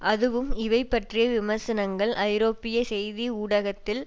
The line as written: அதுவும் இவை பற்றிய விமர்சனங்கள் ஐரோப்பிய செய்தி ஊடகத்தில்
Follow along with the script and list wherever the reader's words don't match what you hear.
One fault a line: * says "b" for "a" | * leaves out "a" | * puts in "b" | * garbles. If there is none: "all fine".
all fine